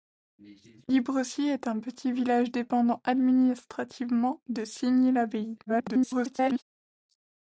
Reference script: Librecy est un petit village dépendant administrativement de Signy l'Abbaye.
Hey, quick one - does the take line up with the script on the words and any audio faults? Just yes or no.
no